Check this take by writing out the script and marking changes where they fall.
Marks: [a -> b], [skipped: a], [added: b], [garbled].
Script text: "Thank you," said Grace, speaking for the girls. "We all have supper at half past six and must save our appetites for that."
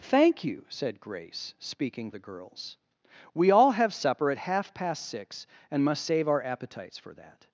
"Thank you," said Grace, speaking [skipped: for] the girls. "We all have supper at half past six and must save our appetites for that."